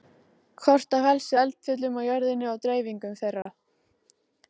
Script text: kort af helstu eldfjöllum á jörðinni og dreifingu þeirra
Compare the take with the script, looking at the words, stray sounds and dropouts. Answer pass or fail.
fail